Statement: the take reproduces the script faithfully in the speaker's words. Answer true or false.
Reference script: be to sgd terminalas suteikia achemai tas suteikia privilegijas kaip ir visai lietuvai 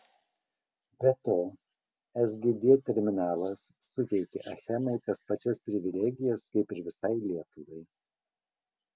false